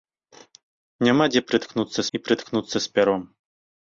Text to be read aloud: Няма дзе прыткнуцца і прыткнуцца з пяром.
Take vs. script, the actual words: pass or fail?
pass